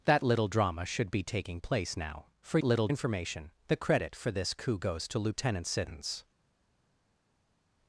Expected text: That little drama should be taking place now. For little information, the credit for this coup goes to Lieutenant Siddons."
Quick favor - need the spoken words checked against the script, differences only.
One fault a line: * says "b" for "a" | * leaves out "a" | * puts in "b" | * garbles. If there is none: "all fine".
all fine